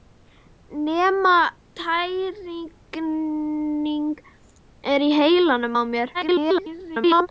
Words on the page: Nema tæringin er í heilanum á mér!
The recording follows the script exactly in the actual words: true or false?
false